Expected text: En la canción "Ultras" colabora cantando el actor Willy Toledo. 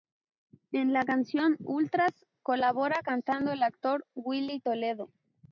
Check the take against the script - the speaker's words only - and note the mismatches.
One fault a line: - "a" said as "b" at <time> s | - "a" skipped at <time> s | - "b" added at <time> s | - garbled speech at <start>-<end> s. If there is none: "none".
none